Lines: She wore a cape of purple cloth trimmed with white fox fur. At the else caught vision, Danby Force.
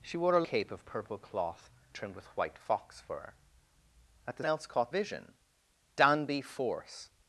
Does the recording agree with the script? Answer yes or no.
yes